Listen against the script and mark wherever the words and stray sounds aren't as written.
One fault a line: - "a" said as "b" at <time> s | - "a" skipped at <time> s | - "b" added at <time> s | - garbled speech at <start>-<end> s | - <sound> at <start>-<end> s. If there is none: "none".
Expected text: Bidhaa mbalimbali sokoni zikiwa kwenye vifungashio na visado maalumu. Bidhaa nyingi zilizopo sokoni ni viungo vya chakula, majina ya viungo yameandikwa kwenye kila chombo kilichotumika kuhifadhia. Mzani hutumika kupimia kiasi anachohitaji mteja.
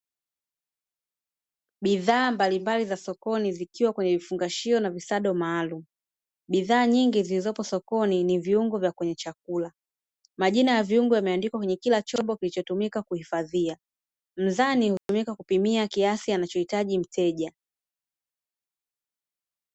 - "za" added at 2.9 s
- "kwenye" added at 8.9 s
- dropout at 15.0-15.1 s